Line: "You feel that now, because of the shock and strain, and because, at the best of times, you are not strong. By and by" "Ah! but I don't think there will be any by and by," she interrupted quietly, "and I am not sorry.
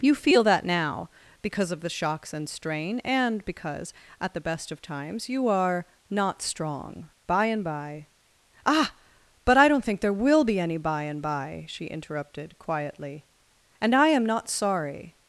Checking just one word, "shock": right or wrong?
wrong